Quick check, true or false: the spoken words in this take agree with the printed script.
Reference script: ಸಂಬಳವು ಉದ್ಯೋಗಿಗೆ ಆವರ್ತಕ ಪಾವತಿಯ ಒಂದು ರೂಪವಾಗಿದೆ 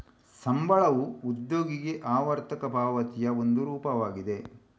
true